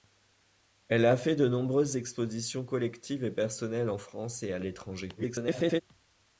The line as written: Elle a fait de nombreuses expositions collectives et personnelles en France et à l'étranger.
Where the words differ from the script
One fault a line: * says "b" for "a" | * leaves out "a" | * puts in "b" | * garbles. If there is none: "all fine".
* garbles